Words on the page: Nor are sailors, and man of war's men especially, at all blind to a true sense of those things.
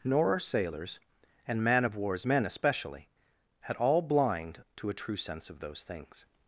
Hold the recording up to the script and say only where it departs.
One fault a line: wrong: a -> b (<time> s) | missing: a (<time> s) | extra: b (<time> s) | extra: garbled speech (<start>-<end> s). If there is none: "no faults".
no faults